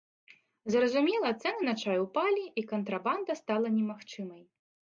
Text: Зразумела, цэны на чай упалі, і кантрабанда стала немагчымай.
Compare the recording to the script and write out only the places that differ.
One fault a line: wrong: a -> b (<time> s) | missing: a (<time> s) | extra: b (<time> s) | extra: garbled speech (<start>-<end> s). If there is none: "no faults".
no faults